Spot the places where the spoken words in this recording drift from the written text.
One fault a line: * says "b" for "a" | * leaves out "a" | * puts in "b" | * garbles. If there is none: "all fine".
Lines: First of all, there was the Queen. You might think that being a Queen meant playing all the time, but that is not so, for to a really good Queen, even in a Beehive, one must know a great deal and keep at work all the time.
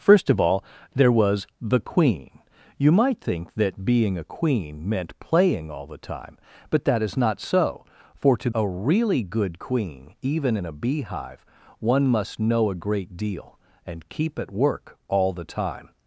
all fine